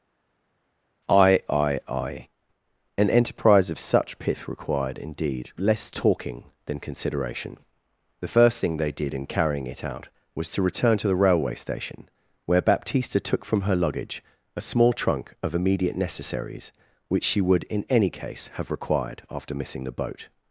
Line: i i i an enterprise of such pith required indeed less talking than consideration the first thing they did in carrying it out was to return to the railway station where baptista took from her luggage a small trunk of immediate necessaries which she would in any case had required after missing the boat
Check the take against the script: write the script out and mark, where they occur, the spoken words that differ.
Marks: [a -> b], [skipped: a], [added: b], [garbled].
i i i an enterprise of such pith required indeed less talking than consideration the first thing they did in carrying it out was to return to the railway station where baptista took from her luggage a small trunk of immediate necessaries which she would in any case [had -> have] required after missing the boat